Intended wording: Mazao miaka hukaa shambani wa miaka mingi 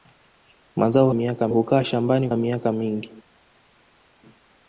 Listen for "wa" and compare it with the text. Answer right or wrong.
right